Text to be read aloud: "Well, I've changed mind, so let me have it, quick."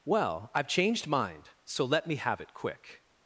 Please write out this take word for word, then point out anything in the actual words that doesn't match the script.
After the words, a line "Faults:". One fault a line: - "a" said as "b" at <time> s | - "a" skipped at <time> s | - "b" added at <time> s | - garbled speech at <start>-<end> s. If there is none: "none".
"Well, I've changed mind, so let me have it, quick."
Faults:
none